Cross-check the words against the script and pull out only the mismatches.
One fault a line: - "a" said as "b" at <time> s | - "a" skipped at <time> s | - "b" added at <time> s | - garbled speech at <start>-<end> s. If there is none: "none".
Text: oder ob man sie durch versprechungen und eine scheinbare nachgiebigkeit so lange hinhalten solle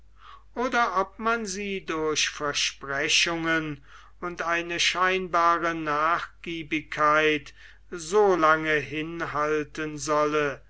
none